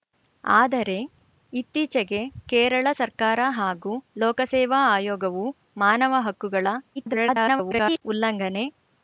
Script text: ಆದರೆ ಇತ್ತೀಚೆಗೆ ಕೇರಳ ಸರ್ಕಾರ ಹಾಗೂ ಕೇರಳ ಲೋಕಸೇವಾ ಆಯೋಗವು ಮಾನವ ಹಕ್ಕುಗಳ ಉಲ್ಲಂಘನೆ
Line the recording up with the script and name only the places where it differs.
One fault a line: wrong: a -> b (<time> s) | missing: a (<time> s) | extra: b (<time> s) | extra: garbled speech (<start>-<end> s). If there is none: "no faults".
missing: ಕೇರಳ (3.9 s)
extra: garbled speech (7.0-8.0 s)